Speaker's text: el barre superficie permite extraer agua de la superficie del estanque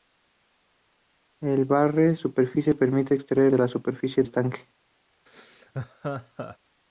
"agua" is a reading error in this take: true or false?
true